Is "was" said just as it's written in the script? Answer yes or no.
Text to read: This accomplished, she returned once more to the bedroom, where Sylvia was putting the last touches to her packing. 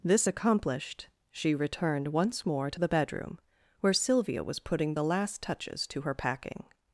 yes